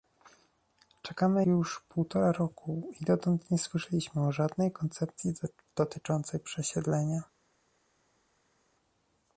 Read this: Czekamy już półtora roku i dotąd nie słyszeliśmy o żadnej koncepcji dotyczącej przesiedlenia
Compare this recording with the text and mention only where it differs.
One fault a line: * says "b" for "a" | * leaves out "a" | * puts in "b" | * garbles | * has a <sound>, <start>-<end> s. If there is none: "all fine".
all fine